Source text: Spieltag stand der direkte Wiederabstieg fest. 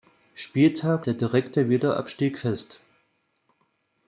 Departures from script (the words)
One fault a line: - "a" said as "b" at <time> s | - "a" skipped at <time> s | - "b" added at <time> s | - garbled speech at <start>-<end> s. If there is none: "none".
- "stand" skipped at 1.1 s